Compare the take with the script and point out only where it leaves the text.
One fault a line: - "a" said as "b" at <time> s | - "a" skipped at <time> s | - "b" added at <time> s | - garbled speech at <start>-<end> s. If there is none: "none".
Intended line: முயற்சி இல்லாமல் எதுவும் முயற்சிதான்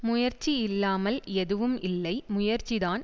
- "இல்லை" added at 1.8 s